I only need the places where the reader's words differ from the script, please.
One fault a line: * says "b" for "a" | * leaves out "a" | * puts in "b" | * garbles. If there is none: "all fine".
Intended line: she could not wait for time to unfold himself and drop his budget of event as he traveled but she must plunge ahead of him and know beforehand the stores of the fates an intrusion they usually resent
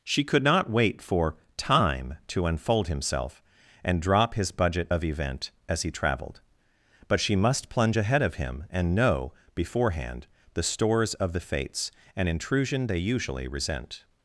all fine